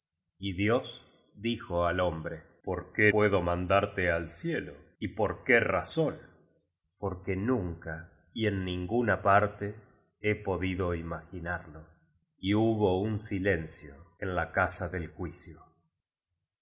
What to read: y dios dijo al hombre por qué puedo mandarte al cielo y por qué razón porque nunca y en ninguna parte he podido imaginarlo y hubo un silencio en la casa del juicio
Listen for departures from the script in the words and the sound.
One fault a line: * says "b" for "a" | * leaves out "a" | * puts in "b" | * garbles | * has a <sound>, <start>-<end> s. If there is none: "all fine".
all fine